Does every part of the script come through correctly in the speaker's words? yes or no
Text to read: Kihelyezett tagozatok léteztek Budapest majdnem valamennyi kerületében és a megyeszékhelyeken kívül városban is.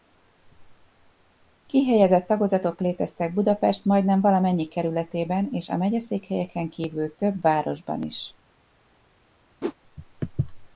no